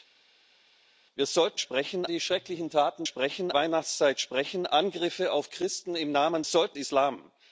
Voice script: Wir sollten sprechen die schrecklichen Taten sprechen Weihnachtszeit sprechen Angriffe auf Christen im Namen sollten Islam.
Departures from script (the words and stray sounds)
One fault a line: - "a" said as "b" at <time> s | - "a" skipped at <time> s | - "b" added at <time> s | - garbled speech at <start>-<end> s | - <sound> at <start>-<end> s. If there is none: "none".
none